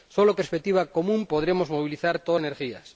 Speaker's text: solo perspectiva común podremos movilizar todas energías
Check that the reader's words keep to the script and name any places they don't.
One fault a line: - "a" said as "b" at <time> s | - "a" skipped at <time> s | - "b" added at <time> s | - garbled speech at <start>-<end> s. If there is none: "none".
none